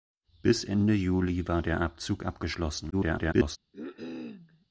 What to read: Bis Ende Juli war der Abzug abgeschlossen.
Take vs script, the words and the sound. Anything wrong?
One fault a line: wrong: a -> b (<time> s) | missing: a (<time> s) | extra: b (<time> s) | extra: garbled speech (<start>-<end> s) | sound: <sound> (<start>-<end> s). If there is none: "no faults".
extra: garbled speech (2.9-3.6 s)
sound: cough (3.7-4.7 s)